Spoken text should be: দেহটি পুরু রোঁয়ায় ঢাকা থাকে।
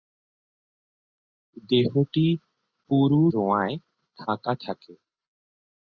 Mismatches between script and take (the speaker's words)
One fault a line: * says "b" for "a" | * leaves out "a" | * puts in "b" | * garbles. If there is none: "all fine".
all fine